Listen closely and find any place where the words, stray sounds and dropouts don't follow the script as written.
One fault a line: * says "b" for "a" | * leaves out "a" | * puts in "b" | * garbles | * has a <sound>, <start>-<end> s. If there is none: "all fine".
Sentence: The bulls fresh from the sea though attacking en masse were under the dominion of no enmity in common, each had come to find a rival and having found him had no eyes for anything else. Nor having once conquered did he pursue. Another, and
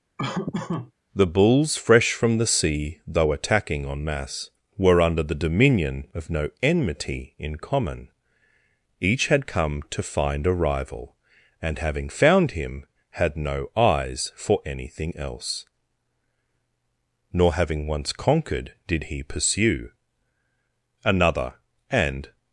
* has a laugh, 0.2-0.9 s